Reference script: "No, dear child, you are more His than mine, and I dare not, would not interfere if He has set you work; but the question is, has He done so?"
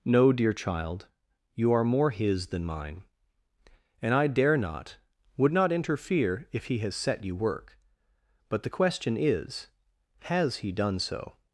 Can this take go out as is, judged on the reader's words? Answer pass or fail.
pass